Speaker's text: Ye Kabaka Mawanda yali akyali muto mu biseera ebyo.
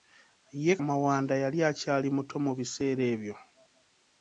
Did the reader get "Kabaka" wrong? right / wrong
wrong